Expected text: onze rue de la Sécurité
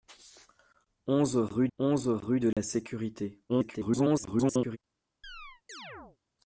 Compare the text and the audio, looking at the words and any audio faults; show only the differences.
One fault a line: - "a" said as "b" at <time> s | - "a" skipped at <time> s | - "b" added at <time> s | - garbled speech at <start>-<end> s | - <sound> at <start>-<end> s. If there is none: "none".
- "onze rue" added at 1.8 s
- dropout at 2.5-2.6 s
- garbled speech at 3.5-4.8 s
- chirp at 5.2-6.2 s